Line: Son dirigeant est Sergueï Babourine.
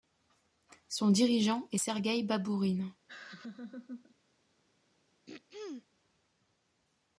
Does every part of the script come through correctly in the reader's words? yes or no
yes